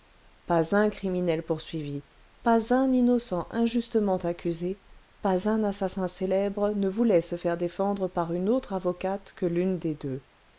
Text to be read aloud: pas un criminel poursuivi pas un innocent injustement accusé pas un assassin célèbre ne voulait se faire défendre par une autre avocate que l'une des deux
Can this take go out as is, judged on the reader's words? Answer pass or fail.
pass